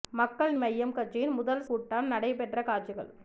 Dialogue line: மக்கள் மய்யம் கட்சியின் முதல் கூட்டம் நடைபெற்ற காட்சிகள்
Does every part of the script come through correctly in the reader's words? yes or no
yes